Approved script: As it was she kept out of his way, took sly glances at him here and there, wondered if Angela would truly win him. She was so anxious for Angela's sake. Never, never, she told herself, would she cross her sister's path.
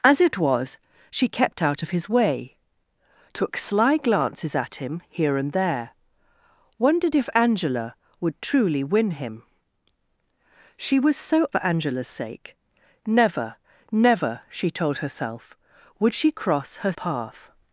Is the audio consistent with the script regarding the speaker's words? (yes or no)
no